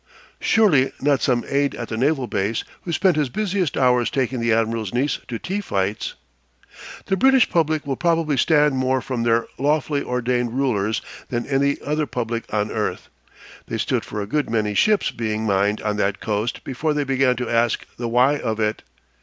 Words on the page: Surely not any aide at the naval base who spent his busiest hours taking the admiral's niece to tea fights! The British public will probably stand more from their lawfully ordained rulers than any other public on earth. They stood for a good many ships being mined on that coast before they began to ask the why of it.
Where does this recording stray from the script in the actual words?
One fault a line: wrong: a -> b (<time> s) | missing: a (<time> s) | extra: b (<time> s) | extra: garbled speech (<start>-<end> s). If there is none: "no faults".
wrong: any -> some (1.2 s)